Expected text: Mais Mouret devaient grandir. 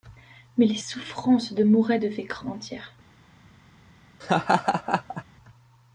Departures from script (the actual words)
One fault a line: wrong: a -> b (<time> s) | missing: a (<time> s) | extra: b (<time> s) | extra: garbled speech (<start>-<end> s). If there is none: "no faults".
extra: les souffrances de (0.7 s)